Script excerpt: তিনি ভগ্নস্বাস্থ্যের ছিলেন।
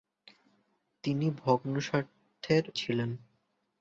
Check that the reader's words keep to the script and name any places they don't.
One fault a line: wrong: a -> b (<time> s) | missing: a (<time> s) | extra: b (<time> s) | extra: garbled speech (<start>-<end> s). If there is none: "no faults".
no faults